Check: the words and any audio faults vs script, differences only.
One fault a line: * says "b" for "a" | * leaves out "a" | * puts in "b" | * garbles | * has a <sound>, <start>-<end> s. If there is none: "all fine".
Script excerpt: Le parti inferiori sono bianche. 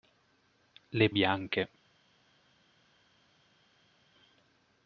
* leaves out "parti inferiori sono"